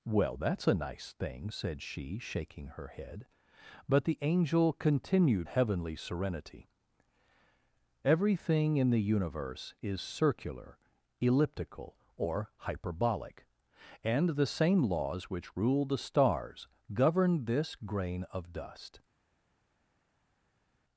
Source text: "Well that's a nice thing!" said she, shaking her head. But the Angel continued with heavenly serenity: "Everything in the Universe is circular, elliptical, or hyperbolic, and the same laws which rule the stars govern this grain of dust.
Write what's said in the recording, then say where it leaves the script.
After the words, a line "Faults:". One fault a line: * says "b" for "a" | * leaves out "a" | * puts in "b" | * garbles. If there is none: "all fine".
"Well that's a nice thing!" said she, shaking her head. But the Angel continued heavenly serenity: "Everything in the Universe is circular, elliptical, or hyperbolic, and the same laws which rule the stars govern this grain of dust.
Faults:
* leaves out "with"